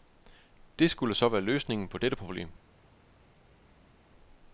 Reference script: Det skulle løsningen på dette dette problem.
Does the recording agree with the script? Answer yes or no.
no